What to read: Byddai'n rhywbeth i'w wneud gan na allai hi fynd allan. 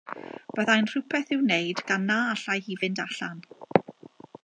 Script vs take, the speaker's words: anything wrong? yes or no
no